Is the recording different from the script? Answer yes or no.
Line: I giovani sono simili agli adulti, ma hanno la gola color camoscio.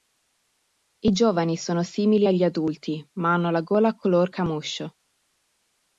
no